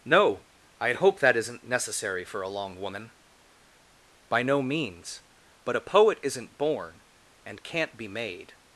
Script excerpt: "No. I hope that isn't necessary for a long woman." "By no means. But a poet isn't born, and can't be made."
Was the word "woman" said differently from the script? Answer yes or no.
no